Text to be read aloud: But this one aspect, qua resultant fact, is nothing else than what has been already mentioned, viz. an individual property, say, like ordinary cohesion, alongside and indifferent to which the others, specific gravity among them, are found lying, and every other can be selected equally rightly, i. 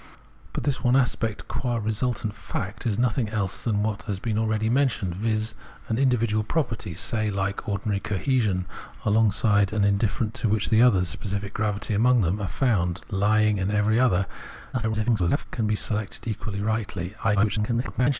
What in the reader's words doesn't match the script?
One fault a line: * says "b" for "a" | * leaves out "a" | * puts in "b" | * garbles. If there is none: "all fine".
* garbles
* garbles